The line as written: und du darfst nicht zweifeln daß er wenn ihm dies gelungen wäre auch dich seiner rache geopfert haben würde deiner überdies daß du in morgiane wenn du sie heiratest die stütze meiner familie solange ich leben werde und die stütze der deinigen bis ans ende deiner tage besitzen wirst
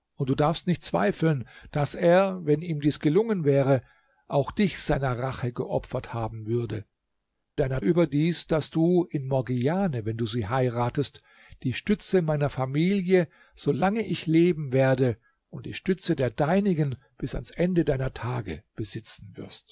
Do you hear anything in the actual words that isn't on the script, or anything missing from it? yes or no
no